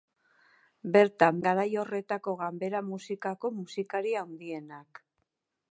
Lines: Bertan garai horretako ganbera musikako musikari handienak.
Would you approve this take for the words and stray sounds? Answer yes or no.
yes